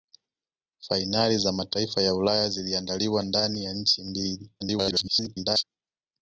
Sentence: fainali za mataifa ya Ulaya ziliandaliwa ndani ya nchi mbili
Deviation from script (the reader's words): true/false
true